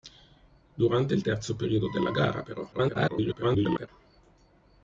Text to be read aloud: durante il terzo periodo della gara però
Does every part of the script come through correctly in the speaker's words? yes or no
no